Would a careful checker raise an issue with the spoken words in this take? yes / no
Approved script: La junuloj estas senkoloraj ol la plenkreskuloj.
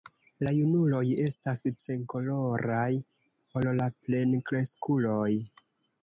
no